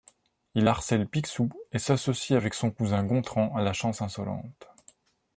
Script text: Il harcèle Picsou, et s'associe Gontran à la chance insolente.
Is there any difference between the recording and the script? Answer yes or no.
yes